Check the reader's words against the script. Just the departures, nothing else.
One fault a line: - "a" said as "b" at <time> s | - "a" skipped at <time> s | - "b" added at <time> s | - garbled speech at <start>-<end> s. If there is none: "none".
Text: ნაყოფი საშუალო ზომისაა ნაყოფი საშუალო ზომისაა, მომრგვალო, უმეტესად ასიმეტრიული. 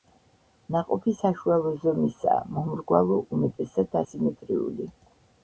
- "ნაყოფი საშუალო ზომისაა" skipped at 2.4 s